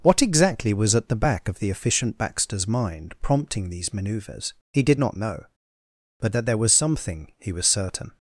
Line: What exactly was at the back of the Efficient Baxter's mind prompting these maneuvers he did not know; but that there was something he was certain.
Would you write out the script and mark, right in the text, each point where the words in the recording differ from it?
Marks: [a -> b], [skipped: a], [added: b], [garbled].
What exactly was at the back of the Efficient Baxter's mind prompting these maneuvers he did not know; but that there was something he was certain.